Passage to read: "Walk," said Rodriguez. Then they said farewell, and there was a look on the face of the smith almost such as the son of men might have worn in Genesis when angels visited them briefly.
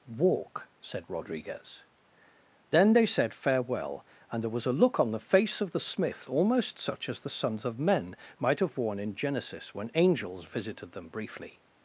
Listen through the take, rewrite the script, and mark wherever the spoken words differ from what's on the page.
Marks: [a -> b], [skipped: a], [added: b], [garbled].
"Walk," said Rodriguez. Then they said farewell, and there was a look on the face of the smith almost such as the [son -> sons] of men might have worn in Genesis when angels visited them briefly.